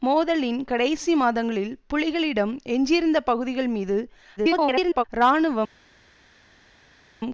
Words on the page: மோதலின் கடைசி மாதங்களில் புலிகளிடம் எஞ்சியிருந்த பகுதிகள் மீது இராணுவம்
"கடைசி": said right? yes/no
yes